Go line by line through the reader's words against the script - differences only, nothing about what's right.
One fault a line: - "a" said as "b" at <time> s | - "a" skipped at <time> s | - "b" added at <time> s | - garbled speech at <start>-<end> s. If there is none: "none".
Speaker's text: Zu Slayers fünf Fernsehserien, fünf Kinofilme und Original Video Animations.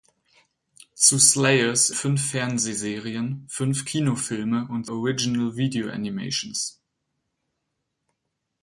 none